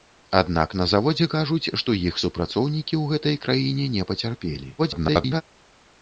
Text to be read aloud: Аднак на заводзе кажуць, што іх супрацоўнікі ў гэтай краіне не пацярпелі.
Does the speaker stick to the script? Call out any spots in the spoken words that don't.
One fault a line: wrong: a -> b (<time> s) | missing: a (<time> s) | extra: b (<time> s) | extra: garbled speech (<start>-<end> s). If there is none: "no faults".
extra: garbled speech (4.8-5.4 s)